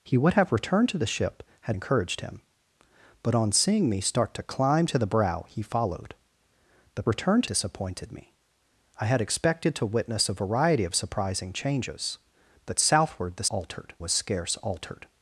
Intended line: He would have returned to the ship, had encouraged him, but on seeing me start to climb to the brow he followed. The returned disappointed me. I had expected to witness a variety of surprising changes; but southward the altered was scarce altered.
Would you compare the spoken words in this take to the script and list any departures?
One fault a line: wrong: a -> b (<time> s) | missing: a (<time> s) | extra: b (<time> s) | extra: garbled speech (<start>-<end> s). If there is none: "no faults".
no faults